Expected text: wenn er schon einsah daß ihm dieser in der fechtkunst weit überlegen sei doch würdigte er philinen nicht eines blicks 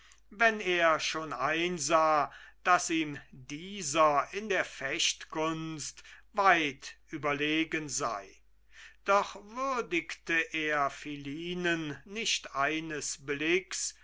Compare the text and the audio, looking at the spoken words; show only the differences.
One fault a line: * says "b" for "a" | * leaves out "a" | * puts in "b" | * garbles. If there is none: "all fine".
all fine